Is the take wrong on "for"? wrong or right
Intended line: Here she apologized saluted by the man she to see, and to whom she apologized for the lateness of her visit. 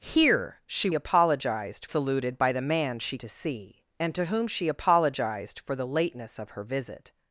right